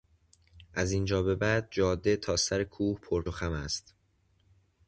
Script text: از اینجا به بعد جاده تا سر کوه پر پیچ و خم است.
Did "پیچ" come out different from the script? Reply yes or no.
yes